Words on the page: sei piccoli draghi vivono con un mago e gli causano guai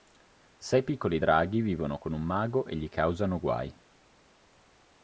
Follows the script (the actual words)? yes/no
yes